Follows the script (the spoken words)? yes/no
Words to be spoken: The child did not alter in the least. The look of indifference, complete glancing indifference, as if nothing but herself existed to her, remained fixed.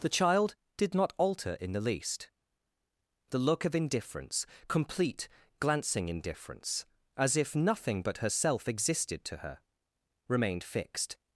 yes